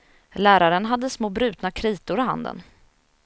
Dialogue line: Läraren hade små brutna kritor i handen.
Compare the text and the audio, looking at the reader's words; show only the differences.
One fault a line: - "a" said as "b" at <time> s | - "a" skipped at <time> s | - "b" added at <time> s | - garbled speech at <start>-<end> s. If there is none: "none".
none